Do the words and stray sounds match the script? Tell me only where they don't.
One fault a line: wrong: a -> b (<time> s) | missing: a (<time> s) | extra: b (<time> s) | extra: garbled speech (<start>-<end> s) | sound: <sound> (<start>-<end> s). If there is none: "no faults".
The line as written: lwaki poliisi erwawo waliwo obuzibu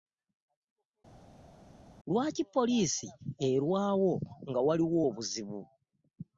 extra: nga (4.5 s)